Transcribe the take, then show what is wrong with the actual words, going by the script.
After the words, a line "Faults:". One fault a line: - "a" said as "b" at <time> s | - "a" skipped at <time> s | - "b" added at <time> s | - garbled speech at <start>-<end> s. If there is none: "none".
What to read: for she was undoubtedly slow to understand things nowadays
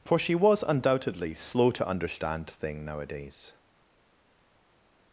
for she was undoubtedly slow to understand thing nowadays
Faults:
- "things" said as "thing" at 2.5 s